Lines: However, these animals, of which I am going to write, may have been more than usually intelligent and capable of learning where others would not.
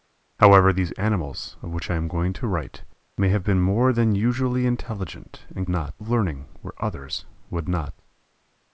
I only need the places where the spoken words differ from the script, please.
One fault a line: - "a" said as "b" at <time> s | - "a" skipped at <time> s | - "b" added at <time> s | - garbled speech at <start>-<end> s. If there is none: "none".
- "capable" said as "not" at 5.7 s